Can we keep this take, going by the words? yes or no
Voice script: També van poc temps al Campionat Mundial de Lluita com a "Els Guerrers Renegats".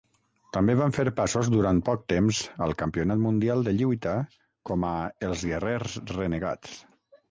no